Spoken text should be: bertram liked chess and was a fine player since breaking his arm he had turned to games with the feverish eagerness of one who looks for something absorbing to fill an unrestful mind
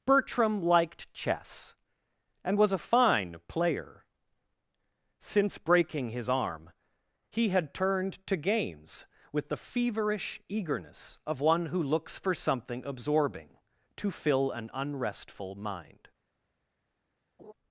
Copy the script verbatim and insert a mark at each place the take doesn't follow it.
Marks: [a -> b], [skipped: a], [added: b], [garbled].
bertram liked chess and was a fine player since breaking his arm he had turned to games with the feverish eagerness of one who looks for something absorbing to fill an unrestful mind